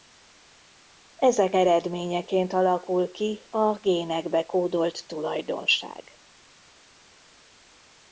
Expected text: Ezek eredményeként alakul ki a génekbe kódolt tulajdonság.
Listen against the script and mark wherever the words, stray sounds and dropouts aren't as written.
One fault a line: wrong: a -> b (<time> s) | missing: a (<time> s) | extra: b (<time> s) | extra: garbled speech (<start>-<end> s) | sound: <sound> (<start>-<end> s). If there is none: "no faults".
no faults